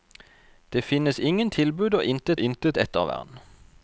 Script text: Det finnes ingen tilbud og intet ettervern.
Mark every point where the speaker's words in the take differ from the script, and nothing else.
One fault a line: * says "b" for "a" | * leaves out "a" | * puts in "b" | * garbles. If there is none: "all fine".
* puts in "intet"